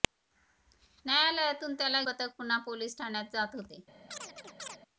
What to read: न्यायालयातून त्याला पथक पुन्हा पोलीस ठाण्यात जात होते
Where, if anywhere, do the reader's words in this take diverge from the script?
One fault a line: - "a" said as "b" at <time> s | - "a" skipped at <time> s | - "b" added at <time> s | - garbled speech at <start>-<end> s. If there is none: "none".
none